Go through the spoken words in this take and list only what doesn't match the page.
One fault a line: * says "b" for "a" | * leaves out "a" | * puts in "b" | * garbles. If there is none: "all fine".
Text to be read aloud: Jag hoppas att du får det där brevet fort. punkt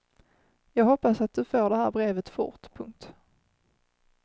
* says "här" for "där"